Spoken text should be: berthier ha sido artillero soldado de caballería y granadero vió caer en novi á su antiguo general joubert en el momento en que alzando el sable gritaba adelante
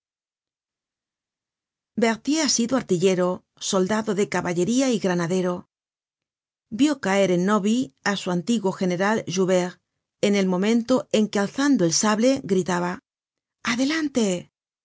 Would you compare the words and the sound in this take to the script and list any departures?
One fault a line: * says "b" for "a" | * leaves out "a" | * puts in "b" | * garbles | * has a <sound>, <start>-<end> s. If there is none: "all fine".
all fine